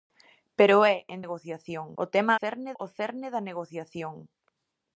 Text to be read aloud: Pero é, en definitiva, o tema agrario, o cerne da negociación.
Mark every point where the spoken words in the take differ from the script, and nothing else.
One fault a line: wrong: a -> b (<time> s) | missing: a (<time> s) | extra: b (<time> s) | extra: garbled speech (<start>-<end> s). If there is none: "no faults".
wrong: definitiva -> negociación (1.2 s)
wrong: agrario -> cerne (2.4 s)